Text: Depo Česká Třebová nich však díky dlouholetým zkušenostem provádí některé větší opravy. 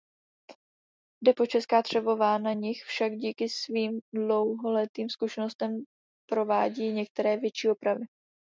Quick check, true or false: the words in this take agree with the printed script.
false